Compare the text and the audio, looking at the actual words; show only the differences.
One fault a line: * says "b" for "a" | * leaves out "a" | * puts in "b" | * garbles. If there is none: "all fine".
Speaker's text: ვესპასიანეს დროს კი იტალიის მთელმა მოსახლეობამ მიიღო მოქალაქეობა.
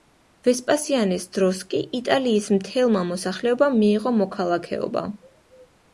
all fine